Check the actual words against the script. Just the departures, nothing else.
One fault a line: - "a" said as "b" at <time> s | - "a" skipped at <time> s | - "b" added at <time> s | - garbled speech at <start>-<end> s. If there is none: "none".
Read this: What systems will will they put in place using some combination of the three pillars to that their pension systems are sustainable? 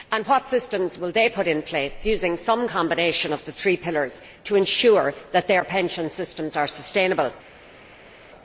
- "will" skipped at 1.1 s
- "ensure" added at 4.5 s